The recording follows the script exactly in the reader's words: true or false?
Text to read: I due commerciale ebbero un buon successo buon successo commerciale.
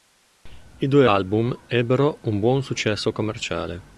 false